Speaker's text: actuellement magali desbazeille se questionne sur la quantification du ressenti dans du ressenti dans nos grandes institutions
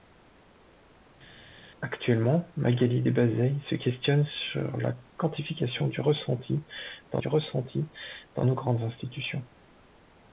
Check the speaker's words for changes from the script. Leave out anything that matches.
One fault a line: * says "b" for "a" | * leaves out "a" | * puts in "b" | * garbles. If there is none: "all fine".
all fine